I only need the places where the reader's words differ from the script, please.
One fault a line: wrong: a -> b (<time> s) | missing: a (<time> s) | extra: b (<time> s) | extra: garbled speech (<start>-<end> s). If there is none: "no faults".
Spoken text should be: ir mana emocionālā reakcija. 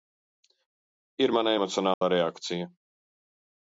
no faults